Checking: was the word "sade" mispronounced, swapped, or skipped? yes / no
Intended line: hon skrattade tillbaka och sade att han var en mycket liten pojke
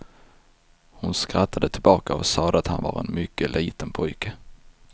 no